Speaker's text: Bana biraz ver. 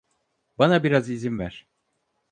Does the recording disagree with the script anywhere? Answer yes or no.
yes